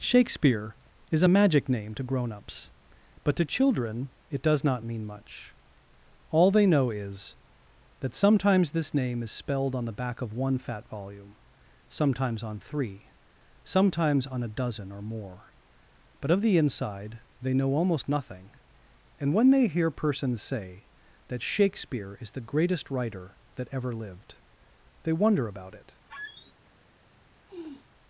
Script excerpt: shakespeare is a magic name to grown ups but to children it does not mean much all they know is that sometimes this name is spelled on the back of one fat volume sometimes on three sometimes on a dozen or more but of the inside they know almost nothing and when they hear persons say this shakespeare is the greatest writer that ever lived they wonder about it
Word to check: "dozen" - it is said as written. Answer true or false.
true